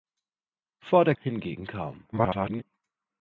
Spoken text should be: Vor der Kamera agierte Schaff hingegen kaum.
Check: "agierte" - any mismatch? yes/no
yes